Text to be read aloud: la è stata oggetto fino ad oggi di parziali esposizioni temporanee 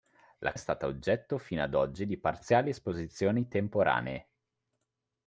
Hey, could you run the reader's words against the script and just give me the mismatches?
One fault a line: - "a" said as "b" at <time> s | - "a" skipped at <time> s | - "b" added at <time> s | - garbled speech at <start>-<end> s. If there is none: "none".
none